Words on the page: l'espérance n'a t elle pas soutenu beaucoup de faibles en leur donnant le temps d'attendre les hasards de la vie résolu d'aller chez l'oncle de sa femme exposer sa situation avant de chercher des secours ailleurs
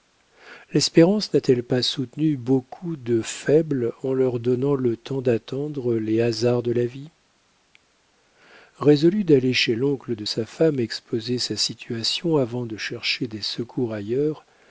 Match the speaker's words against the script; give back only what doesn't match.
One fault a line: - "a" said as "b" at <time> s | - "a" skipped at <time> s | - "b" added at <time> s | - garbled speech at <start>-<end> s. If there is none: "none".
none